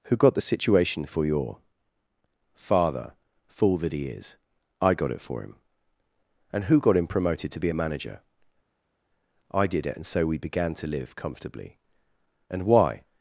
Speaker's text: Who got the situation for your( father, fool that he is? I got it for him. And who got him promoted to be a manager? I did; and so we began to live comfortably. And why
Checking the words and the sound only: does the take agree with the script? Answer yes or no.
no